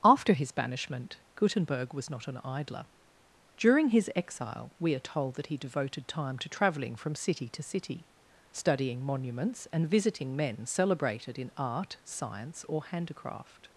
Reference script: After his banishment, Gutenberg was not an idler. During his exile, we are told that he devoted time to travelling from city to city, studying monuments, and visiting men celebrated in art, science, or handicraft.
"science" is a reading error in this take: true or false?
false